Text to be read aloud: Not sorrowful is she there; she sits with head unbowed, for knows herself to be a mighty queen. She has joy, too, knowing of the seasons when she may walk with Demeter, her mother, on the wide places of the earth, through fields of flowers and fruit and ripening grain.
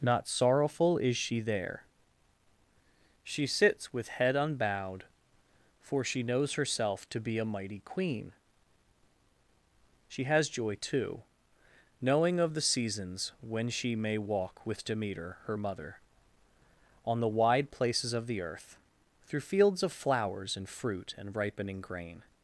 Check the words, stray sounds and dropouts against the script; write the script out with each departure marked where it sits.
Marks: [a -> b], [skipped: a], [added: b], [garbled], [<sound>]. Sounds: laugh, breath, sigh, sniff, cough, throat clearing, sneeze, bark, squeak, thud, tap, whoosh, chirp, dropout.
Not sorrowful is she there; she sits with head unbowed, for [added: she] knows herself to be a mighty queen. She has joy, too, knowing of the seasons when she may walk with Demeter, her mother, on the wide places of the earth, through fields of flowers and fruit and ripening grain.